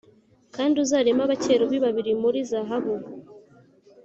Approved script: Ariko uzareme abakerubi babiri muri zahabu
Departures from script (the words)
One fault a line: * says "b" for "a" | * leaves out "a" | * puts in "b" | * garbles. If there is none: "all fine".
* says "Kandi" for "Ariko"